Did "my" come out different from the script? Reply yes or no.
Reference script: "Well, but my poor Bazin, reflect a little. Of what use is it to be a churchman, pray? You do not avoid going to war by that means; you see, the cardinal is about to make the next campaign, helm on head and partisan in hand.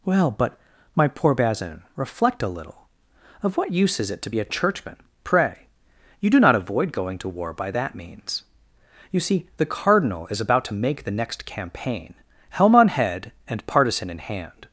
no